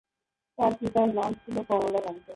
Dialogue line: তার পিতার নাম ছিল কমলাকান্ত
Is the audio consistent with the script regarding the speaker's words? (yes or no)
yes